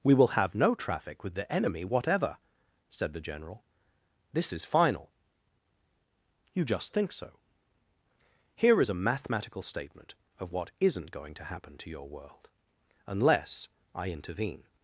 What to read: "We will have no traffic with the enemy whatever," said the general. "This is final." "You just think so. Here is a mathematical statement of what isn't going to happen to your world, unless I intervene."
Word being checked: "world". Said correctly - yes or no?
yes